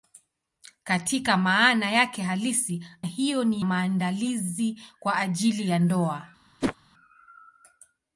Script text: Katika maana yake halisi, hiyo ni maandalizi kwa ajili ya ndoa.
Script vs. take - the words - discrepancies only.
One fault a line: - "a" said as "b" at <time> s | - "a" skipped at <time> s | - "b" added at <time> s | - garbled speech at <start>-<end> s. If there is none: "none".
none